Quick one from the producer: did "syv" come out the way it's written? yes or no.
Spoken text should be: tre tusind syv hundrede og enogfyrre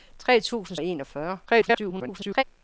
no